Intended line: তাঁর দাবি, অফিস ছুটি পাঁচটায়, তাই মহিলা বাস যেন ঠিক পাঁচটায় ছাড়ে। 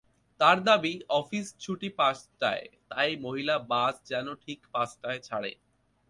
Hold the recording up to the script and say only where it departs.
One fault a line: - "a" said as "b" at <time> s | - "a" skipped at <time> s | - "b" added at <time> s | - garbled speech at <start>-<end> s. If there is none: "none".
none